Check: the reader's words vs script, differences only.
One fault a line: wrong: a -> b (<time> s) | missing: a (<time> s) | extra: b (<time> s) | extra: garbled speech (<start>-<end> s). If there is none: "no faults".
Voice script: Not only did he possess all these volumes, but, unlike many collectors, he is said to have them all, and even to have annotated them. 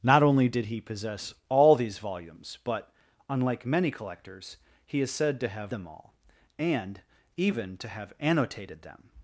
no faults